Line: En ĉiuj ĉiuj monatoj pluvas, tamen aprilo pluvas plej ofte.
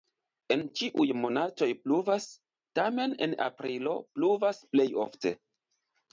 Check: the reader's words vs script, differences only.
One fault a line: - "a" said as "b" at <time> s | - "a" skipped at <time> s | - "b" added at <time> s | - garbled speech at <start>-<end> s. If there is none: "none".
- "ĉiuj" skipped at 1.0 s
- "en" added at 3.3 s